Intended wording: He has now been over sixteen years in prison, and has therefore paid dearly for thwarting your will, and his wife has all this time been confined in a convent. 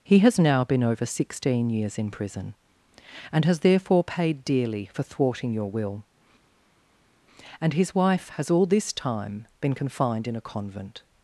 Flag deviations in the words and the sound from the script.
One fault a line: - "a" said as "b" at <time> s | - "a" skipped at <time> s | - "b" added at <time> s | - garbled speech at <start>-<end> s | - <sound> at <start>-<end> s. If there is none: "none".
none